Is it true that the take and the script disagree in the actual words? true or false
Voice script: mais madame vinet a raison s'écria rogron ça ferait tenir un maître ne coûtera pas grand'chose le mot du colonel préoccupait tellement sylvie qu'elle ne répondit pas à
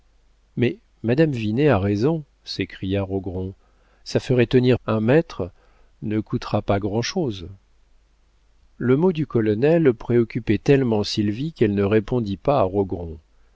false